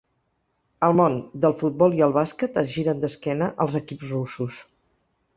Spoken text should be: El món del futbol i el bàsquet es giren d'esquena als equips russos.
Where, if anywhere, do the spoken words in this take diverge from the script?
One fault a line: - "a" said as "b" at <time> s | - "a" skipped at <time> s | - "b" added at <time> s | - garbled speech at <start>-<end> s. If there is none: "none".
none